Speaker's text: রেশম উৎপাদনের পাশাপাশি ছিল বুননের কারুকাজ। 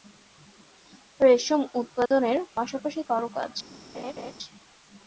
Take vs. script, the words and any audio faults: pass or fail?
fail